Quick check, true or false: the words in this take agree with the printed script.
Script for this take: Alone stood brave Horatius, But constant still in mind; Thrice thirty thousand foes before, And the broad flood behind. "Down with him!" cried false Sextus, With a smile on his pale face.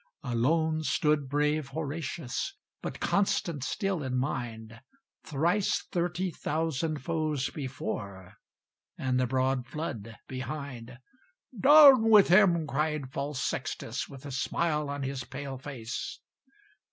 true